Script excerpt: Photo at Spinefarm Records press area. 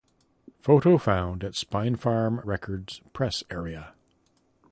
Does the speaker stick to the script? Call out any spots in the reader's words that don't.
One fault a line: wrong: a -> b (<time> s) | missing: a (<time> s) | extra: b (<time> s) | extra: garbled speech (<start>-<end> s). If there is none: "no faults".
extra: found (1.0 s)